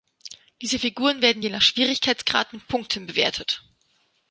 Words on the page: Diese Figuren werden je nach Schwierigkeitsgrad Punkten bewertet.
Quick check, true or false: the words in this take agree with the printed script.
false